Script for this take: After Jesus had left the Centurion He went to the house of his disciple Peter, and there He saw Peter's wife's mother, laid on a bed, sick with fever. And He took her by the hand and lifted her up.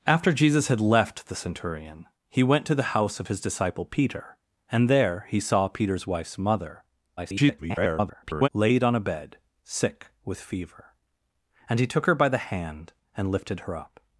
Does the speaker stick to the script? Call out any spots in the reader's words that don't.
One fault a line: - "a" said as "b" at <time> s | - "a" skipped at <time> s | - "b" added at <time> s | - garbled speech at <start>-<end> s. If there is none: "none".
- garbled speech at 7.2-8.5 s